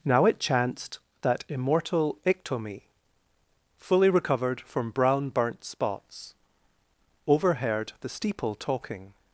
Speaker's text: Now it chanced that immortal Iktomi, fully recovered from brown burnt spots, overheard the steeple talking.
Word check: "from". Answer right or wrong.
right